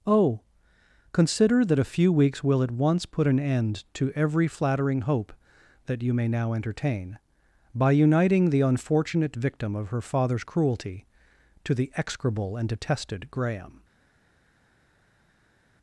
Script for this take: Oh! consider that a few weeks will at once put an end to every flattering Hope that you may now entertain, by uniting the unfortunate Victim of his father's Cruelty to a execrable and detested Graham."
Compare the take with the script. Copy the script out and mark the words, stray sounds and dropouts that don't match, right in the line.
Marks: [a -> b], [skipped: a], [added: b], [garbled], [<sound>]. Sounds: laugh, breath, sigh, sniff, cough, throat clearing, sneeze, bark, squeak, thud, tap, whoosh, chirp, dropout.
Oh! consider that a few weeks will at once put an end to every flattering Hope that you may now entertain, by uniting the unfortunate Victim of [his -> her] father's Cruelty to [a -> the] execrable and detested Graham."